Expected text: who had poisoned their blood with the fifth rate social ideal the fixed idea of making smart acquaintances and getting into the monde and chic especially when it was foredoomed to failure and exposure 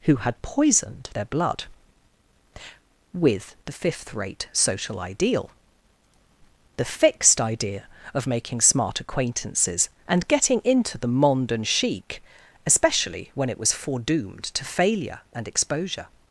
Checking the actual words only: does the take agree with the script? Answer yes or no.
yes